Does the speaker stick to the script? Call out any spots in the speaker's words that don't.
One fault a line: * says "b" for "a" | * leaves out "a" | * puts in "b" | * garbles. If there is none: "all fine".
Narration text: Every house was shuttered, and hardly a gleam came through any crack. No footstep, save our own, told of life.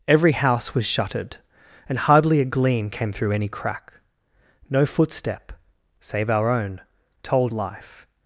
* leaves out "of"